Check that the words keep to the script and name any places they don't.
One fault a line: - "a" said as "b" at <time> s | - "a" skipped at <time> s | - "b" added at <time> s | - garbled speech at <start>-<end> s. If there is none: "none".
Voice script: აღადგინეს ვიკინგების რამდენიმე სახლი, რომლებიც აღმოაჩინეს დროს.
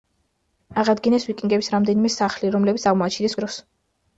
none